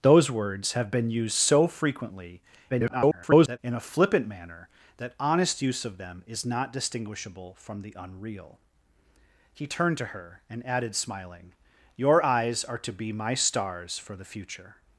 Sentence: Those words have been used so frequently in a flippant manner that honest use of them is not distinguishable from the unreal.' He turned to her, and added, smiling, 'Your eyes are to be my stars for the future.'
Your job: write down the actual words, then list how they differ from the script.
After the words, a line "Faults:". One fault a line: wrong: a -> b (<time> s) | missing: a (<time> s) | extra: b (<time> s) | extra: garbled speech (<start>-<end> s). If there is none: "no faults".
Those words have been used so frequently [garbled] in a flippant manner that honest use of them is not distinguishable from the unreal.' He turned to her, and added, smiling, 'Your eyes are to be my stars for the future.'
Faults:
extra: garbled speech (2.7-3.6 s)